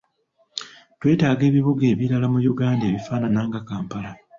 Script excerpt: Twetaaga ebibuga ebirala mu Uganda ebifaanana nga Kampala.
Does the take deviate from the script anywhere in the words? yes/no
no